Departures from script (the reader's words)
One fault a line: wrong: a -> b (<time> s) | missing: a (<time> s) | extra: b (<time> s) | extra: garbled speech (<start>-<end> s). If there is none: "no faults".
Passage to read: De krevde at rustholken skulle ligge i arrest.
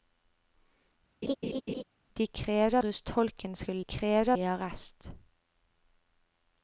missing: at (2.8 s)
wrong: ligge -> krevde (3.8 s)